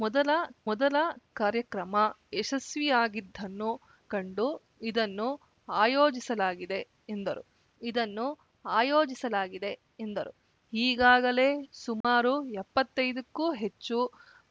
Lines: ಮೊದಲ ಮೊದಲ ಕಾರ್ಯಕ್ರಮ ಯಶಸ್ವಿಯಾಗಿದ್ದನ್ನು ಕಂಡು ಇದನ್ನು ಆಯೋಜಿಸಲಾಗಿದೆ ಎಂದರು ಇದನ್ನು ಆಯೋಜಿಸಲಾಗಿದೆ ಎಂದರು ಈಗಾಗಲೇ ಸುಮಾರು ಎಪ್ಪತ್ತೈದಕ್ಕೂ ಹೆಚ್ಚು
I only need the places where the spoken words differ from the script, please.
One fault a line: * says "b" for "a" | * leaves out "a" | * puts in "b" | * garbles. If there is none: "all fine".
all fine